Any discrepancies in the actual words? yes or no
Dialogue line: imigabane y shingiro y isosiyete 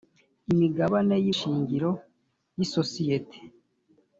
no